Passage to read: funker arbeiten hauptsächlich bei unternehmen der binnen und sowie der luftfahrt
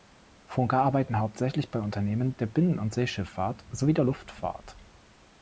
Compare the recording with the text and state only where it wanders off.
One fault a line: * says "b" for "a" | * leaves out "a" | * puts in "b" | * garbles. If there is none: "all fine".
* puts in "seeschifffahrt"